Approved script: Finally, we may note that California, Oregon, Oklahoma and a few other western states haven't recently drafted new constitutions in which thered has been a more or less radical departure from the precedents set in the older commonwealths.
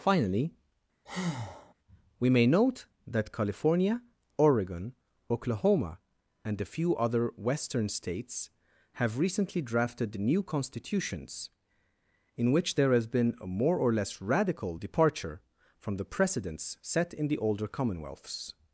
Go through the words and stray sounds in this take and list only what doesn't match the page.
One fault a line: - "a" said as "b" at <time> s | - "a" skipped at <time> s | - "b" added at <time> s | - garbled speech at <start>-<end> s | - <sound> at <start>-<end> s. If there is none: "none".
- breath at 1.1-1.7 s
- "haven't" said as "have" at 8.9 s
- "thered" said as "there" at 12.8 s